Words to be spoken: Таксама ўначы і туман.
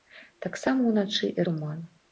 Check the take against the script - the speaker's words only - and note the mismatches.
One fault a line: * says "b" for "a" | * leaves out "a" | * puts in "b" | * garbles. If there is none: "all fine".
all fine